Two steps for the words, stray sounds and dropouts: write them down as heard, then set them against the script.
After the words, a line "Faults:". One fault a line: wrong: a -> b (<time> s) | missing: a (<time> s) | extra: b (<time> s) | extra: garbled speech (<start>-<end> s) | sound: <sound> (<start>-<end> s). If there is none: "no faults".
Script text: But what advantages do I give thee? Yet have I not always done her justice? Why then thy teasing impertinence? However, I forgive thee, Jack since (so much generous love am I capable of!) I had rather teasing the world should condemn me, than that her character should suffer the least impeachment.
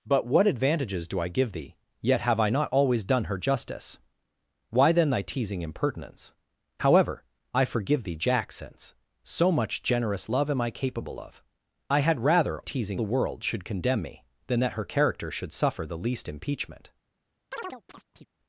But what advantages do I give thee? Yet have I not always done her justice? Why then thy teasing impertinence? However, I forgive thee, Jack since (so much generous love am I capable of!) I had rather teasing the world should condemn me, than that her character should suffer the least impeachment.
Faults:
sound: chirp (17.5-18.3 s)